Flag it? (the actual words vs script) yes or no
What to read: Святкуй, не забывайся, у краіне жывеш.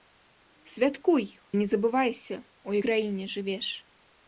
no